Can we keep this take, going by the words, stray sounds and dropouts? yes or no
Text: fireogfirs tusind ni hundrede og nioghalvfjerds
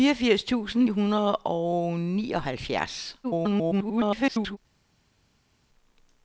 no